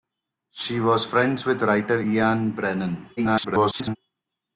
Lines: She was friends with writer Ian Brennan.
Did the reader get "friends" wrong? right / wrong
right